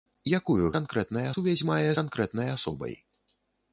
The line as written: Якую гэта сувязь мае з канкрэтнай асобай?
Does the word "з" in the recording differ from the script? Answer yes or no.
yes